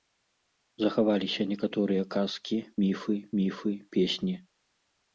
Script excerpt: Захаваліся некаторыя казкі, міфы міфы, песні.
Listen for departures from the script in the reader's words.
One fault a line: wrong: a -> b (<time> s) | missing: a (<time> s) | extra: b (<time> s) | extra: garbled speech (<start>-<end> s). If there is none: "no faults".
no faults